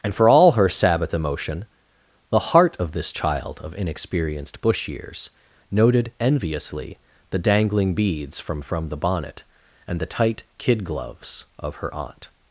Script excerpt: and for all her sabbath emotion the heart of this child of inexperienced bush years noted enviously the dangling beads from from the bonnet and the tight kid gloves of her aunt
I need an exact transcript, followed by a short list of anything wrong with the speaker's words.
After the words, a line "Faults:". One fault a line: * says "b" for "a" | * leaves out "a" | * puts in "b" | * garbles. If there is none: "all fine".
and for all her sabbath emotion the heart of this child of inexperienced bush years noted enviously the dangling beads from from the bonnet and the tight kid gloves of her aunt
Faults:
all fine